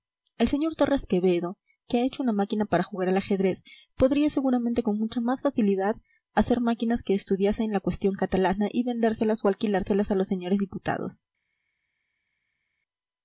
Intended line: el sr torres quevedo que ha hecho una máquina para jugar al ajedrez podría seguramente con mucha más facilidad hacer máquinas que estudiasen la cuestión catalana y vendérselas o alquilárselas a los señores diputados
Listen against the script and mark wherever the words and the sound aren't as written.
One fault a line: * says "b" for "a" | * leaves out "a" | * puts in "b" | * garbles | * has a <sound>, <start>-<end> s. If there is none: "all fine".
all fine